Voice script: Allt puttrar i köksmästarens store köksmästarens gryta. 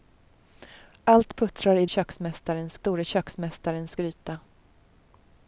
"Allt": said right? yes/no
yes